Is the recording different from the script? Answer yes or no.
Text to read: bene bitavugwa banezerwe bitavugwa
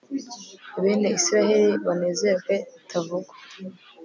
yes